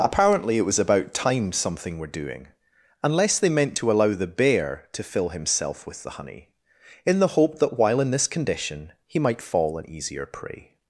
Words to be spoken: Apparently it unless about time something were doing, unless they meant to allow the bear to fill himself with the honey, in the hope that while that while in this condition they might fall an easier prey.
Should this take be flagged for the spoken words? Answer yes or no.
yes